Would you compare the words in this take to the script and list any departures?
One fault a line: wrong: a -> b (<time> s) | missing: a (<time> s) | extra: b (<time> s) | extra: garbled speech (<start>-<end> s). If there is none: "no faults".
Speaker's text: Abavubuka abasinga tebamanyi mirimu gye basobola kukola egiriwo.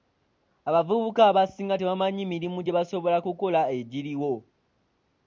no faults